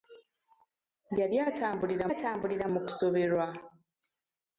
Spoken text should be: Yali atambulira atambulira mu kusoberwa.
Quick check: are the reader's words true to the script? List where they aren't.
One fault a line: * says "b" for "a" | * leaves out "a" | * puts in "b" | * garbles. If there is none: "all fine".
all fine